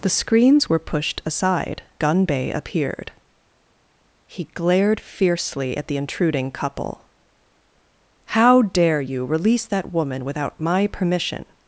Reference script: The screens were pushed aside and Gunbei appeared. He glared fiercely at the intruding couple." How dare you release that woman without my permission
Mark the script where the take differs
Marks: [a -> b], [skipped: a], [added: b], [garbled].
The screens were pushed aside [skipped: and] Gunbei appeared. He glared fiercely at the intruding couple." How dare you release that woman without my permission